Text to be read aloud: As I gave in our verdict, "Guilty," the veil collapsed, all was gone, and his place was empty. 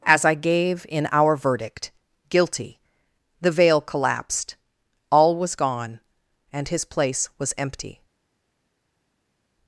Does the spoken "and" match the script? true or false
true